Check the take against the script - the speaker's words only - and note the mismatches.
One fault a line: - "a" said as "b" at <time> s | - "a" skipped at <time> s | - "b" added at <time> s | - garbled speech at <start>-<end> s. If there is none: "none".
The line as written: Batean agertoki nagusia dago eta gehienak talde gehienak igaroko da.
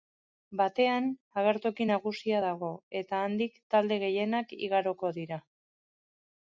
- "gehienak" said as "handik" at 3.3 s
- "da" said as "dira" at 5.2 s